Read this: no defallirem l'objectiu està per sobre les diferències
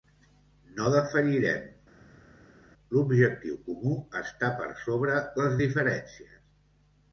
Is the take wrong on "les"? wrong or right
right